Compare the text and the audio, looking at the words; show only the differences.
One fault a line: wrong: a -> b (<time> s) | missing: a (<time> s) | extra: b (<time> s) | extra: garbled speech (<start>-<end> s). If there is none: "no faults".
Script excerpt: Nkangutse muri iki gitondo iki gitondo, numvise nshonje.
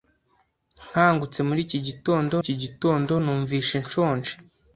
no faults